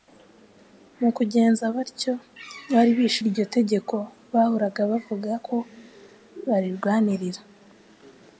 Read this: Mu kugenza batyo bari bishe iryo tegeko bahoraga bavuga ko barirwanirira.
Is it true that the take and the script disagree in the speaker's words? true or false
false